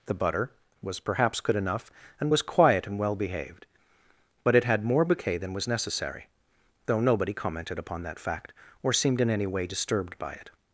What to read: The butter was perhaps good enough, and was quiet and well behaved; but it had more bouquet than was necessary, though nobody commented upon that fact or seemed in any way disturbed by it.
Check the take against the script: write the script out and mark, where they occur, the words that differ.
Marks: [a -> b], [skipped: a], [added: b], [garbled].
The butter was perhaps good enough, and was quiet and well behaved; but it had more bouquet than was necessary, though nobody commented upon that fact or seemed in any way disturbed by it.